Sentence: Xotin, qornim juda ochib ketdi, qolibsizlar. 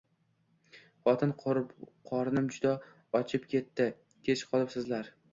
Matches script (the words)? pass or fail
fail